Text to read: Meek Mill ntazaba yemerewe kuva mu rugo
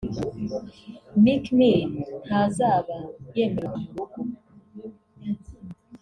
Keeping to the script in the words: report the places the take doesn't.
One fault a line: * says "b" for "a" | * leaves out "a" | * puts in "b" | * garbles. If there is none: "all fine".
* leaves out "kuva"